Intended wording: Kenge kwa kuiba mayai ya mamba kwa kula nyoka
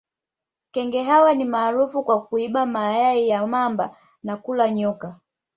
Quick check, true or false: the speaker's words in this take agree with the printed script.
false